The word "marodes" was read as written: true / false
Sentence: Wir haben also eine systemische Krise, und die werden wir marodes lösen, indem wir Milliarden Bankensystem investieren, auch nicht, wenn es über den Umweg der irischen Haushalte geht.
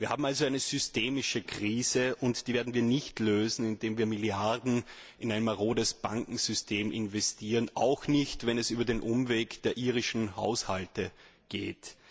false